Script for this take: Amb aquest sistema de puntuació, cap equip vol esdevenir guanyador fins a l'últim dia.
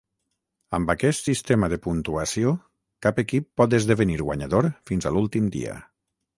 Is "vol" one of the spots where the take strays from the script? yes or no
yes